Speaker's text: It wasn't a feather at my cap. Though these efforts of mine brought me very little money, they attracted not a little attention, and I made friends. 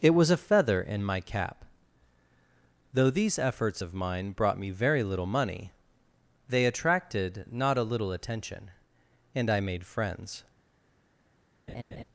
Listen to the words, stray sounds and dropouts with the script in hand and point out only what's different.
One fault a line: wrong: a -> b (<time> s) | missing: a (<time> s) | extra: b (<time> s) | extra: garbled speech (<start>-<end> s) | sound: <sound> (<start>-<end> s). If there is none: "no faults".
wrong: wasn't -> was (0.1 s)
wrong: at -> in (0.8 s)
sound: laugh (11.7-12.0 s)